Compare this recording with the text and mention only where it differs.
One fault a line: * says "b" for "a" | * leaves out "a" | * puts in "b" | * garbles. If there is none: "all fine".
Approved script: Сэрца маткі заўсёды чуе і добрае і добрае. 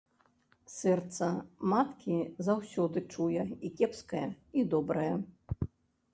* says "кепскае" for "добрае"